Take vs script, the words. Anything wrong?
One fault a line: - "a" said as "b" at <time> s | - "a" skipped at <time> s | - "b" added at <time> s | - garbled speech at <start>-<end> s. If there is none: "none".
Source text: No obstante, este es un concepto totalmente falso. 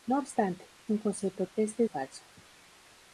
- "este es" skipped at 0.7 s
- "totalmente" said as "este" at 1.5 s